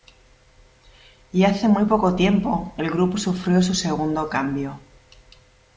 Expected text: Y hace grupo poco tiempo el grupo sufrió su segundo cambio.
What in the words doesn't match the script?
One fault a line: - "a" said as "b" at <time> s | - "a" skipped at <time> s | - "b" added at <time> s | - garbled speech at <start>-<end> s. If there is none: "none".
- "grupo" said as "muy" at 1.7 s